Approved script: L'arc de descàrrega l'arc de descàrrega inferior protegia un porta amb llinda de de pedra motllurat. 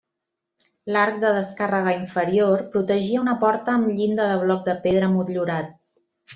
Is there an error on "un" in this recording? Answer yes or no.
yes